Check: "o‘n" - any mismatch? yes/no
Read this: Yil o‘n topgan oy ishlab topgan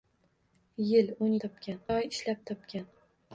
no